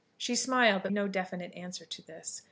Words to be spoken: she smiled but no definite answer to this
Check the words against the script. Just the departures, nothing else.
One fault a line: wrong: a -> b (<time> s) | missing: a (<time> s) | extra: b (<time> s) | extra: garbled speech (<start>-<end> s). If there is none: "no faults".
no faults